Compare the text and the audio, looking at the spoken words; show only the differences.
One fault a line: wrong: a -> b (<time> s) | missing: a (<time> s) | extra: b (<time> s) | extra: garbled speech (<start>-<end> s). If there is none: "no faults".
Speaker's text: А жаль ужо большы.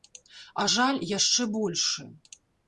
wrong: ужо -> яшчэ (1.2 s)